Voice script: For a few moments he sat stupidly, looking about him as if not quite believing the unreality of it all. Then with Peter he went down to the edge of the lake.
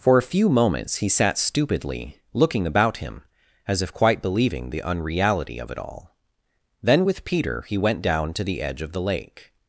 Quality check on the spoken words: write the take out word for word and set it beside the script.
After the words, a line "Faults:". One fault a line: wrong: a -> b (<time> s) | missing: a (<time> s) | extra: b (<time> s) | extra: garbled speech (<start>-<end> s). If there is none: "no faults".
For a few moments he sat stupidly, looking about him as if quite believing the unreality of it all. Then with Peter he went down to the edge of the lake.
Faults:
missing: not (3.9 s)